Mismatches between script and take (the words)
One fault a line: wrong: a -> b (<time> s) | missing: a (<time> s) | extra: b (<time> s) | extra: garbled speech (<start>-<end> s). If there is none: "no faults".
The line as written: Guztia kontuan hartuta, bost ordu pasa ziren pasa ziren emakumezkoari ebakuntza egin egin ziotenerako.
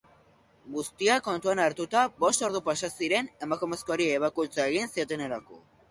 missing: pasa ziren (3.3 s)
missing: egin (4.9 s)